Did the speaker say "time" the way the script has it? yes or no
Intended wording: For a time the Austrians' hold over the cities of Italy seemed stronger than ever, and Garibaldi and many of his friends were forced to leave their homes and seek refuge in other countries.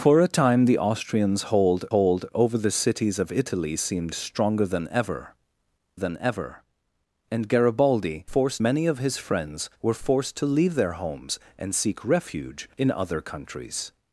yes